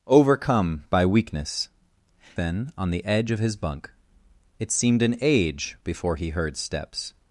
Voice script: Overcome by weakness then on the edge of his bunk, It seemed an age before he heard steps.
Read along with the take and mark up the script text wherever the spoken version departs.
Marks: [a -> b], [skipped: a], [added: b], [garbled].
Overcome by weakness then on the edge of his bunk, It seemed an age before he heard steps.